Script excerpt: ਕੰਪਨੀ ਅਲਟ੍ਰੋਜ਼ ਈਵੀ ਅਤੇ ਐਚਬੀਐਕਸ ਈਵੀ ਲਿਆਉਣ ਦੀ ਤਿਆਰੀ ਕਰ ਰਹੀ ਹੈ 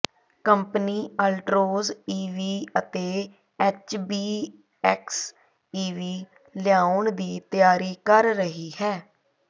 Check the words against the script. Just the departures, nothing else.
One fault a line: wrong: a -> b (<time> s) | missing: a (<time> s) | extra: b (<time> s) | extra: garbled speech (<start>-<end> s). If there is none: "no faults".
no faults